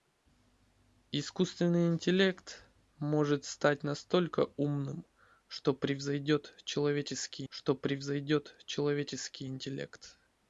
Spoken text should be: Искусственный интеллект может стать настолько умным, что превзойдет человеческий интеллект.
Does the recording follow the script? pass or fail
fail